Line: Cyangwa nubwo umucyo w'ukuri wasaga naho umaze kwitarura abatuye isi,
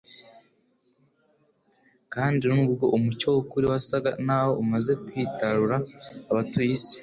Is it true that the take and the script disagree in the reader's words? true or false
true